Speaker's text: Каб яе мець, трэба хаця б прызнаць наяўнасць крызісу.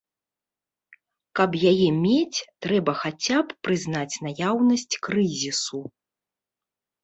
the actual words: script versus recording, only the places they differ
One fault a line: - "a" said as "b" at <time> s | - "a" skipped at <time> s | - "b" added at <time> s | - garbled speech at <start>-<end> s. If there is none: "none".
none